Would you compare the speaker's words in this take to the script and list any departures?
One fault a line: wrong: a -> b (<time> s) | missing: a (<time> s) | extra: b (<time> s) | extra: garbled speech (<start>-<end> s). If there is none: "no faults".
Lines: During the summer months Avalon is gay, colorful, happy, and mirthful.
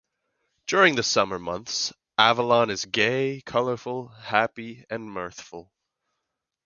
no faults